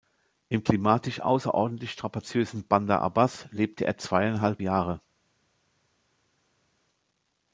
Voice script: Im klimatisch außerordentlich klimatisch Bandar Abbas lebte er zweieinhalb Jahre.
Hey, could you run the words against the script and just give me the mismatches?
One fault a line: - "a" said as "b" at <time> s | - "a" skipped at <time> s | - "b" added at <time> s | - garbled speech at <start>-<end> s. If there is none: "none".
- "klimatisch" said as "strapaziösen" at 1.9 s